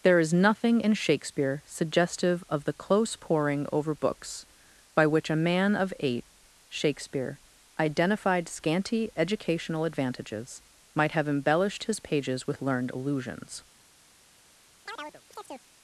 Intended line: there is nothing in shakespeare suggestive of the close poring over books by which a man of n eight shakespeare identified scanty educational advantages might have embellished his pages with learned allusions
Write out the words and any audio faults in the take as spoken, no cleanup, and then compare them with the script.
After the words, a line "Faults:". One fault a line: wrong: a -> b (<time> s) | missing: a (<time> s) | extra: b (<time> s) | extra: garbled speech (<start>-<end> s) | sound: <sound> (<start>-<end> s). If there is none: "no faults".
there is nothing in shakespeare suggestive of the close poring over books by which a man of eight shakespeare identified scanty educational advantages might have embellished his pages with learned allusions
Faults:
missing: n (5.9 s)
sound: chirp (14.9-15.7 s)